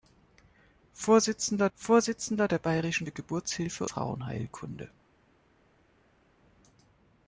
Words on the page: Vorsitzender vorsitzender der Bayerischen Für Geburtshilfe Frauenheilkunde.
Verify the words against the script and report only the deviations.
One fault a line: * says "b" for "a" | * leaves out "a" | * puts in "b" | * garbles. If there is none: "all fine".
all fine